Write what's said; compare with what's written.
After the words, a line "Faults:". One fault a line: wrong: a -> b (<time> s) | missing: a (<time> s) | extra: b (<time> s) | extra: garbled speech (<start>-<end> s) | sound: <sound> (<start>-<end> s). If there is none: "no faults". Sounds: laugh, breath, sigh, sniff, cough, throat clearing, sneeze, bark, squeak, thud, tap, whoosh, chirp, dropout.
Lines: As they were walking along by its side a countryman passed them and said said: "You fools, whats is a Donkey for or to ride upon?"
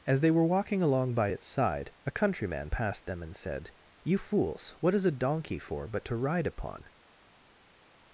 As they were walking along by its side a countryman passed them and said: "You fools, what is a Donkey for but to ride upon?"
Faults:
missing: said (3.7 s)
wrong: whats -> what (4.8 s)
wrong: or -> but (5.9 s)